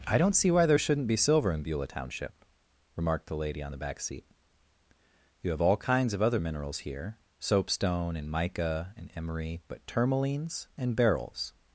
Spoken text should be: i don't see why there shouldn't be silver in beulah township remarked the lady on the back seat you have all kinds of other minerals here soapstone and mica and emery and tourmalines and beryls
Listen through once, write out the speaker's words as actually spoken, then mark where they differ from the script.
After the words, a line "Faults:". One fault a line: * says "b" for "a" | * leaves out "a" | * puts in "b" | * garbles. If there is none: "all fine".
i don't see why there shouldn't be silver in beulah township remarked the lady on the back seat you have all kinds of other minerals here soapstone and mica and emery but tourmalines and beryls
Faults:
* says "but" for "and"